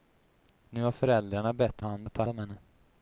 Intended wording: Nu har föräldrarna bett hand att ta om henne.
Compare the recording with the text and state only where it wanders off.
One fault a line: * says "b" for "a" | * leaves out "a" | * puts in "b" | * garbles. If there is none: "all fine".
all fine